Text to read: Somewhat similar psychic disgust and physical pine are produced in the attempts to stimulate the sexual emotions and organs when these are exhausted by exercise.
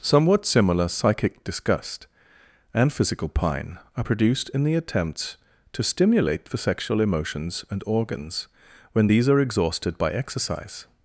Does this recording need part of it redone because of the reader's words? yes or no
no